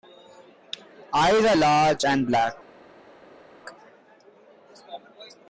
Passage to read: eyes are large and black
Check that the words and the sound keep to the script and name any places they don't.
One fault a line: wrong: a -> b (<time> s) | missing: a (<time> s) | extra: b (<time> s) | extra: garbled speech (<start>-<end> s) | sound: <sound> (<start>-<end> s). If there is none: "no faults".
no faults